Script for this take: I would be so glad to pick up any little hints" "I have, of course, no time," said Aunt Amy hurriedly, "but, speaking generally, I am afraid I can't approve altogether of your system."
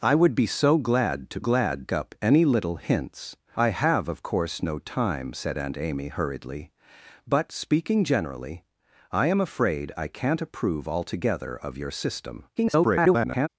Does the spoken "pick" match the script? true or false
false